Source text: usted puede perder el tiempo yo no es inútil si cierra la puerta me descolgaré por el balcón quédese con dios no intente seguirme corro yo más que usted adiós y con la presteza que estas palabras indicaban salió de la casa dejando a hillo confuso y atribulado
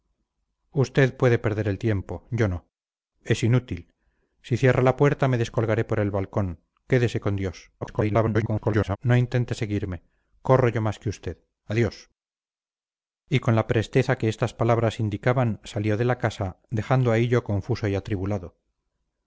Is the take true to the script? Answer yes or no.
no